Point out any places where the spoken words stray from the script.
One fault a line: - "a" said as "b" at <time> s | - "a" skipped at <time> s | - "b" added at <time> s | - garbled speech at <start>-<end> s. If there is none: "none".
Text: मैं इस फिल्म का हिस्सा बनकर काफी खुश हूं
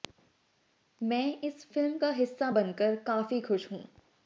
none